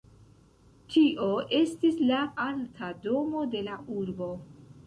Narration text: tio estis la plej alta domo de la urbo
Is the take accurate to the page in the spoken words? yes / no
no